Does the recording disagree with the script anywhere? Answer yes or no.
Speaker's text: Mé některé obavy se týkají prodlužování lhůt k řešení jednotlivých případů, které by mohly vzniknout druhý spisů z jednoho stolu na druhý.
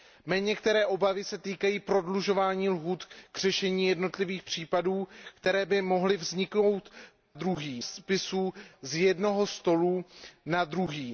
no